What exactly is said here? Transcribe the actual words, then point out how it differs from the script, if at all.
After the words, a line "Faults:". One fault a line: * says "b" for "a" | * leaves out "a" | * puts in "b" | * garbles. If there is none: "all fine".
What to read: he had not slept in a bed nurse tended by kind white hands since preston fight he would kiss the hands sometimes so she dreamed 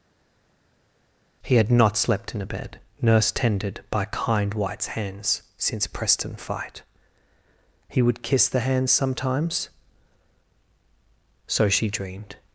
he had not slept in a bed nurse tended by kind whites hands since preston fight he would kiss the hands sometimes so she dreamed
Faults:
* says "whites" for "white"